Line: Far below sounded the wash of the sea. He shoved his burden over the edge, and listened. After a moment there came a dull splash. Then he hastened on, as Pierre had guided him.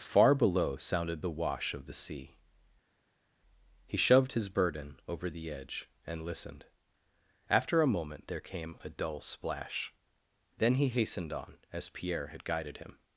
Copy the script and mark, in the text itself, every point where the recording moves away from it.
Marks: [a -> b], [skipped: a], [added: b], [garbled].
Far below sounded the wash of the sea. He shoved his burden over the edge, and listened. After a moment there came a dull splash. Then he hastened on, as Pierre had guided him.